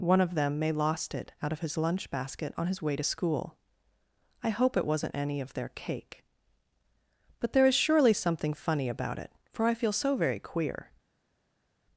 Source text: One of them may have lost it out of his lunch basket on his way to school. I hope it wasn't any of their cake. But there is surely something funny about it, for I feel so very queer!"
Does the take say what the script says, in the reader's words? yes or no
no